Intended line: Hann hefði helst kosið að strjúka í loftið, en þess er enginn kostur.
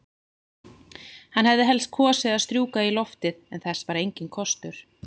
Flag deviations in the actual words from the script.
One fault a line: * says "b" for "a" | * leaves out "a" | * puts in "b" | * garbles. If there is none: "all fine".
* says "var" for "er"